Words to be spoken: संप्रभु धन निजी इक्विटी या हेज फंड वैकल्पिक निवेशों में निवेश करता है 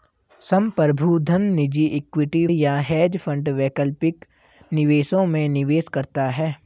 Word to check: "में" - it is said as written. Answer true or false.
true